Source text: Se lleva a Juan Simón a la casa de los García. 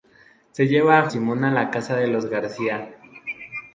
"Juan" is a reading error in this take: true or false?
true